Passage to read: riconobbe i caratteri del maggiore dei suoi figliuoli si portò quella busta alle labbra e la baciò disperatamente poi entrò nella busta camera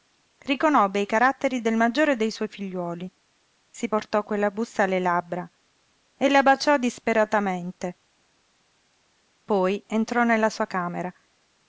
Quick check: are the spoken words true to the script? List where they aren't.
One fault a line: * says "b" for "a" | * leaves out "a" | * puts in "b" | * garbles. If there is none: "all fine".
* says "sua" for "busta"